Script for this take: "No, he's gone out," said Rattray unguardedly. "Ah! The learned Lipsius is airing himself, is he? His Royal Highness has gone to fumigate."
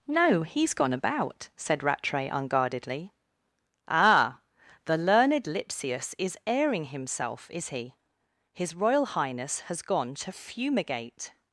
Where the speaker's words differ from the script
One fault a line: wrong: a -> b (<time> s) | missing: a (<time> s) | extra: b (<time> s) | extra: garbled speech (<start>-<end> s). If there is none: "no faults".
wrong: out -> about (0.9 s)